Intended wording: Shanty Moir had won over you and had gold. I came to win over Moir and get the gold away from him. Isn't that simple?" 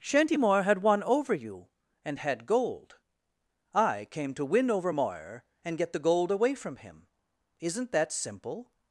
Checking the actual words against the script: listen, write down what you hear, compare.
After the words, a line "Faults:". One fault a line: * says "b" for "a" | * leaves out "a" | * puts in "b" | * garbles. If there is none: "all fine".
Shanty Moir had won over you and had gold. I came to win over Moir and get the gold away from him. Isn't that simple?"
Faults:
all fine